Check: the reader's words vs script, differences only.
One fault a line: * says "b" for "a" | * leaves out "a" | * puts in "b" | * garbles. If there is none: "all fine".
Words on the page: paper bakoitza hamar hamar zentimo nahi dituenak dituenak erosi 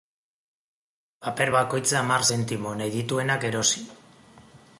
* leaves out "hamar"
* leaves out "dituenak"